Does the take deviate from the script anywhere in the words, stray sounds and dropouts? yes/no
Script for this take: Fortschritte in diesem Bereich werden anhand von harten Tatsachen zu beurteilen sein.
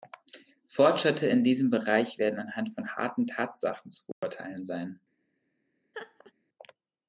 yes